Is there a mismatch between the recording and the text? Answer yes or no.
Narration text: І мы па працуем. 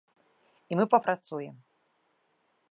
no